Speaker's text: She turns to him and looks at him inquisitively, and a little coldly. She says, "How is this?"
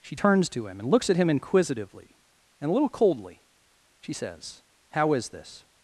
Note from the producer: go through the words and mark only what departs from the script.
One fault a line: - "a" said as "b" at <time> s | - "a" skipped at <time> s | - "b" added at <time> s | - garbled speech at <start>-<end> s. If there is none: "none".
none